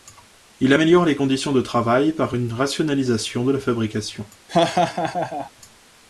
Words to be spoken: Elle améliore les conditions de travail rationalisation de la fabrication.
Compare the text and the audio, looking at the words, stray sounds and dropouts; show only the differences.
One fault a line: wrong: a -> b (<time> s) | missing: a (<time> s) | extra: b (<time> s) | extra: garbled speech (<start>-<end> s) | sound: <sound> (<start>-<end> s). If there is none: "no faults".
wrong: Elle -> Il (0.6 s)
extra: par une (2.1 s)
sound: laugh (4.5-5.5 s)